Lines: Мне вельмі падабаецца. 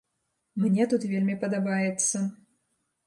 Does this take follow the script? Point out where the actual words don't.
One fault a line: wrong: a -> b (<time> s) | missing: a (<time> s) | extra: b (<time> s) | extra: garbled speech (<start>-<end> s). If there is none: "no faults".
extra: тут (0.9 s)